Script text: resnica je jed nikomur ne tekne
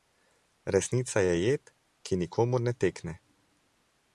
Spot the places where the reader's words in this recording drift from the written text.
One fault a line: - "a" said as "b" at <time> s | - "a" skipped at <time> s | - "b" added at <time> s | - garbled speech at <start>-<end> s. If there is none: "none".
- "ki" added at 2.0 s